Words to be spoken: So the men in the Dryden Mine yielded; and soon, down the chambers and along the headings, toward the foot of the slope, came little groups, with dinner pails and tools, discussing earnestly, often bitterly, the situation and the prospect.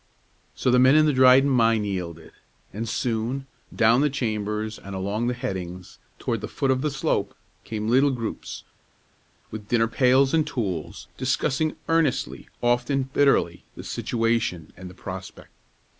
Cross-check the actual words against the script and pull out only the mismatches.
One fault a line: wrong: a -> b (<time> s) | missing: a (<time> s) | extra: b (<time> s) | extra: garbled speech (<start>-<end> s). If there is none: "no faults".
no faults